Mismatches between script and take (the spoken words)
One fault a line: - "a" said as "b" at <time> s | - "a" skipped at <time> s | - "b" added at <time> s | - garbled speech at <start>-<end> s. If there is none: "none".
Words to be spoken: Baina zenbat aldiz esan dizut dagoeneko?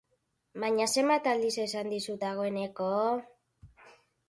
none